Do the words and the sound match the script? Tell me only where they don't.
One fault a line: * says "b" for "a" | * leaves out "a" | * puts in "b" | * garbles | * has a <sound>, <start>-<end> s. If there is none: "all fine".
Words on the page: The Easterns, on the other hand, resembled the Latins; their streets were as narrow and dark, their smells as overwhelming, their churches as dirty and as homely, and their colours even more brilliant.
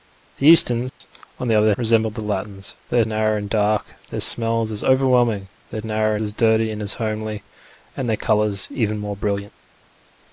* has a dropout, 0.9-1.0 s
* leaves out "hand"
* leaves out "streets were as"
* says "narrow" for "churches"